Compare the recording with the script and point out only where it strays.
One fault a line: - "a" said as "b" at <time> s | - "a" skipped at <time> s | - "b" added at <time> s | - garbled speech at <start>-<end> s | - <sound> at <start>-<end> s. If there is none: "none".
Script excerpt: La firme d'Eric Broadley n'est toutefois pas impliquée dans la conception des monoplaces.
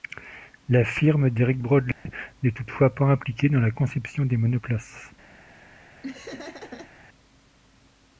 - dropout at 1.9-2.1 s
- laugh at 6.0-6.9 s